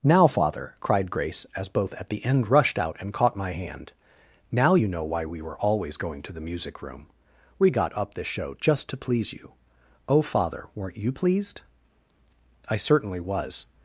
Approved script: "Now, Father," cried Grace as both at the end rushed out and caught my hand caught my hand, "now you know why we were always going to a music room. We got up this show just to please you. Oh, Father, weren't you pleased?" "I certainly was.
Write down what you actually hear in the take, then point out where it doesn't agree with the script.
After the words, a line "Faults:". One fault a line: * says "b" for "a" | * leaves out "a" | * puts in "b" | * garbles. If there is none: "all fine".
"Now, Father," cried Grace as both at the end rushed out and caught my hand, "now you know why we were always going to the music room. We got up this show just to please you. Oh, Father, weren't you pleased?" "I certainly was.
Faults:
* leaves out "caught my hand"
* says "the" for "a"